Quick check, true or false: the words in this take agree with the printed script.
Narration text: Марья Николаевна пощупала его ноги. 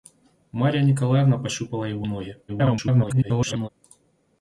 false